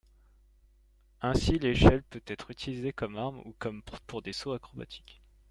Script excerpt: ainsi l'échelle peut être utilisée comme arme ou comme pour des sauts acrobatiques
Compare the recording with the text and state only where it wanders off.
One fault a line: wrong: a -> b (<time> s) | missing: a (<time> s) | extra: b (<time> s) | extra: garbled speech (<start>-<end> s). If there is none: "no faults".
no faults